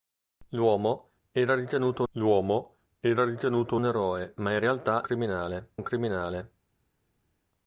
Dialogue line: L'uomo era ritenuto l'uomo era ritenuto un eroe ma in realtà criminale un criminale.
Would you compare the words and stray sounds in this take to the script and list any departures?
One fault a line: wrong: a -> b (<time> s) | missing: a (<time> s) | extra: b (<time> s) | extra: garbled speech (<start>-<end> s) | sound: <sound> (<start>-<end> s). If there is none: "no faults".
no faults